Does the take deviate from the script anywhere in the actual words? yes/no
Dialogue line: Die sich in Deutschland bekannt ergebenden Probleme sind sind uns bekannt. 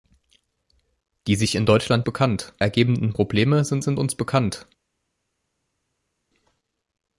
no